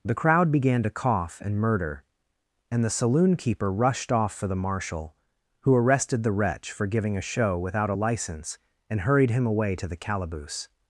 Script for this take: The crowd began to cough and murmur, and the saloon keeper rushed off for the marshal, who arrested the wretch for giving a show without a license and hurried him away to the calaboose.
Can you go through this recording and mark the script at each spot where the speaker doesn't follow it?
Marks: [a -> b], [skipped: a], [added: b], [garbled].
The crowd began to cough and [murmur, -> murder] and the saloon keeper rushed off for the marshal, who arrested the wretch for giving a show without a license and hurried him away to the calaboose.